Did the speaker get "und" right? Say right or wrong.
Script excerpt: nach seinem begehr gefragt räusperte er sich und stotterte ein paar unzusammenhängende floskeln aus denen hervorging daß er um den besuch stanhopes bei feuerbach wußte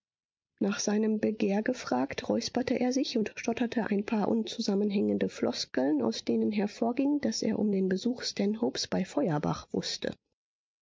right